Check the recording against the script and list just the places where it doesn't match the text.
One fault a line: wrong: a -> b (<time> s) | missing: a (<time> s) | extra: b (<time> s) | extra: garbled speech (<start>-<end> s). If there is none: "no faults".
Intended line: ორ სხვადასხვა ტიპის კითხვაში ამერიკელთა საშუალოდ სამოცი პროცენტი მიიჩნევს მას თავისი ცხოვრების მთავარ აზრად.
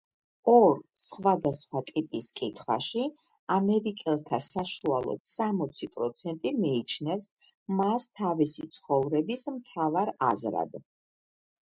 no faults